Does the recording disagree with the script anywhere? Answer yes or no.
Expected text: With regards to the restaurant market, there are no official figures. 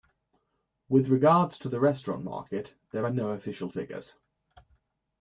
no